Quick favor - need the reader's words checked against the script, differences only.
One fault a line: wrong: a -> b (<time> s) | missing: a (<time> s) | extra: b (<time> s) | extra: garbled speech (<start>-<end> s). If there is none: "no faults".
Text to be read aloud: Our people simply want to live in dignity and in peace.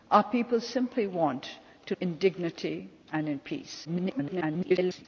missing: live (1.9 s)
extra: garbled speech (3.8-5.1 s)